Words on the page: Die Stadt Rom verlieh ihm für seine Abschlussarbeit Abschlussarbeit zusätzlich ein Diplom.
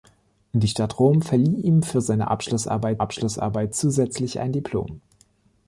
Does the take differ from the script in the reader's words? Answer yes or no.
no